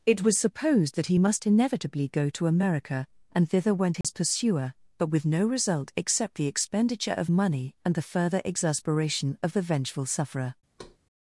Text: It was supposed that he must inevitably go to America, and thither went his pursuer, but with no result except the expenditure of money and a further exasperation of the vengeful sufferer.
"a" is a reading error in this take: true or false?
true